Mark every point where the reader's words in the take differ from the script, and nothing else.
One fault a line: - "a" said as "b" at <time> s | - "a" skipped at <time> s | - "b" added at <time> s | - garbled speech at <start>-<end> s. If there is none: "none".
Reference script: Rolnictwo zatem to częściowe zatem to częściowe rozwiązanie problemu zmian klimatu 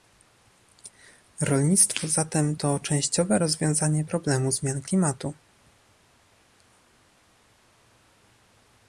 - "zatem to częściowe" skipped at 3.4 s